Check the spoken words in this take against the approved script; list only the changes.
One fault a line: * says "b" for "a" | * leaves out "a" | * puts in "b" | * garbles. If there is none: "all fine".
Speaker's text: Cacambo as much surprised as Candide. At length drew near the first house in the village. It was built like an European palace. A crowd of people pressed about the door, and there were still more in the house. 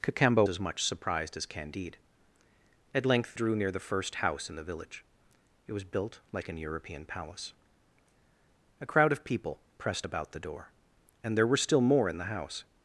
all fine